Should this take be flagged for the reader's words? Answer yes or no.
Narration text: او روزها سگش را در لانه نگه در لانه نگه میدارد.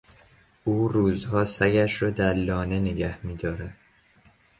yes